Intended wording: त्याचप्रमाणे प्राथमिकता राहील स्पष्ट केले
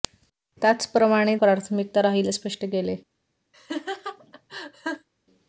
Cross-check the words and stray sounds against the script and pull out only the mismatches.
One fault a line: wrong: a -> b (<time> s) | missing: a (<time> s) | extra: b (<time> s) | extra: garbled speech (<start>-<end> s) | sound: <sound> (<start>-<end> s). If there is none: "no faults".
sound: laugh (3.5-5.1 s)